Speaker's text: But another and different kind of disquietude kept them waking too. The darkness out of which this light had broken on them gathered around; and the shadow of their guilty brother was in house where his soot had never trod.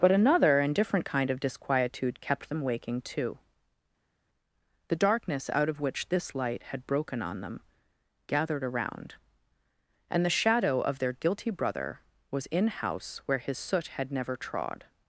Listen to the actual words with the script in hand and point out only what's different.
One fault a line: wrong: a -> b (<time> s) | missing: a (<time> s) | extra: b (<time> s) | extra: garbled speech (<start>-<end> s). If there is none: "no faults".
no faults